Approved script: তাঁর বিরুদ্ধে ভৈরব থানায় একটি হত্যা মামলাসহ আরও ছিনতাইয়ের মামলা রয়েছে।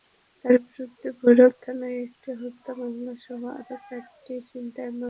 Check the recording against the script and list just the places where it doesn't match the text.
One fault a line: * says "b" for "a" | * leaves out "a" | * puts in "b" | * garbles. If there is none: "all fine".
* puts in "চারটি"